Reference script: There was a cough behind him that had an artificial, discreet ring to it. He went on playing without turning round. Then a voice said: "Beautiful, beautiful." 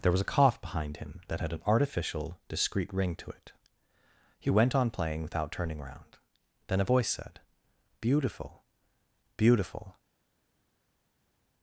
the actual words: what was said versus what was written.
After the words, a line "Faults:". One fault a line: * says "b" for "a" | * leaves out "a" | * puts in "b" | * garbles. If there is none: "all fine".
There was a cough behind him that had an artificial, discreet ring to it. He went on playing without turning round. Then a voice said: "Beautiful, beautiful."
Faults:
all fine